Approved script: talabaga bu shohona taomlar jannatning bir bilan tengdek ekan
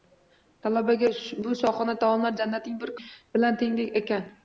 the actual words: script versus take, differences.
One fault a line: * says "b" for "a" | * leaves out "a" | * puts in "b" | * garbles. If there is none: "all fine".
all fine